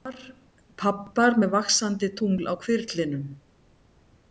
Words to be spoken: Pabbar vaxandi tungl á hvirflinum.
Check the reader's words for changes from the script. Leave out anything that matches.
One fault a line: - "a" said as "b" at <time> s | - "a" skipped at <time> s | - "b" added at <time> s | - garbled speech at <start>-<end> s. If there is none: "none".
- "með" added at 1.4 s